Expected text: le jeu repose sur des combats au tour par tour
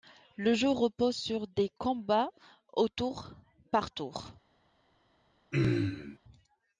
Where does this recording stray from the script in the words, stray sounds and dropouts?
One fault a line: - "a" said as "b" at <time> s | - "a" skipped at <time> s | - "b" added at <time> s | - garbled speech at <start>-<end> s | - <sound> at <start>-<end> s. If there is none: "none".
- throat clearing at 5.5-6.2 s